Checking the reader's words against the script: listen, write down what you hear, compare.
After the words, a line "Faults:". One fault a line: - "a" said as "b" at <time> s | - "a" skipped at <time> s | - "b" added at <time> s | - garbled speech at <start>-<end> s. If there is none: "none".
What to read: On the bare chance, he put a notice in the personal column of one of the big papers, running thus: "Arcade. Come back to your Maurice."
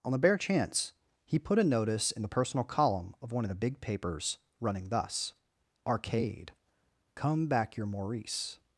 On the bare chance, he put a notice in the personal column of one of the big papers, running thus: "Arcade. Come back your Maurice."
Faults:
- "to" skipped at 7.7 s